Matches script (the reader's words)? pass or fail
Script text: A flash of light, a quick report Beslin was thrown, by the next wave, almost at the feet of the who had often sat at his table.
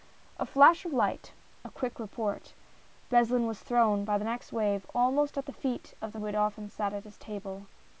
pass